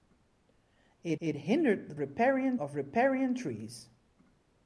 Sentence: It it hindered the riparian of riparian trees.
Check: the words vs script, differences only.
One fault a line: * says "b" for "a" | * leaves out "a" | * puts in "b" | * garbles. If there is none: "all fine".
all fine